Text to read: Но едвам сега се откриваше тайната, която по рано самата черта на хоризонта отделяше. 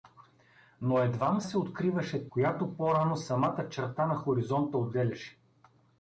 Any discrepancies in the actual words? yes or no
yes